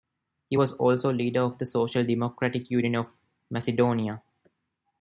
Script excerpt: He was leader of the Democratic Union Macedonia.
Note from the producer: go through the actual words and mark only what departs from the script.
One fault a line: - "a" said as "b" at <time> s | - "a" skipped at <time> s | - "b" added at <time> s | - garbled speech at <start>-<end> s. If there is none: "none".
- "also" added at 0.7 s
- "Social" added at 1.7 s
- "of" added at 2.9 s